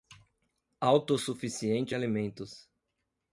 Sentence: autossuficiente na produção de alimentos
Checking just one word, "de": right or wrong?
wrong